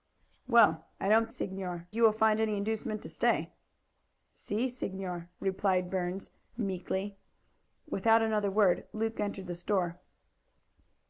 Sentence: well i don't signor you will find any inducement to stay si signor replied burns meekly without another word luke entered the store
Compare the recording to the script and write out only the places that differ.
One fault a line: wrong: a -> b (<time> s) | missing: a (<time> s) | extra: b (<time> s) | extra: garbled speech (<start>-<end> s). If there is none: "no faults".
no faults